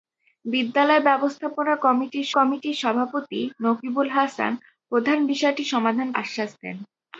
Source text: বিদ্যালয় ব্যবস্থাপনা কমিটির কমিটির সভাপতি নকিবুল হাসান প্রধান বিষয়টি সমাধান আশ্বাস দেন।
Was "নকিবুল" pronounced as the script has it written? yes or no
yes